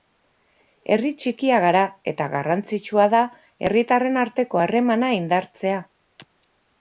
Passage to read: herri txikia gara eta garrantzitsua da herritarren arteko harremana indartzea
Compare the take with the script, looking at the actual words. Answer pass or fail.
pass